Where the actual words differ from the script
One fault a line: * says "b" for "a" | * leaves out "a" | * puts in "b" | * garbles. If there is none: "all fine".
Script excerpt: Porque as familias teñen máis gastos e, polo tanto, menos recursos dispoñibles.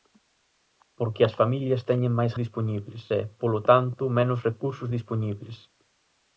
* says "dispoñibles" for "gastos"